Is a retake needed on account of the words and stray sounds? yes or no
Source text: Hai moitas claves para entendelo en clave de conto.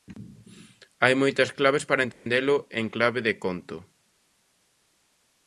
yes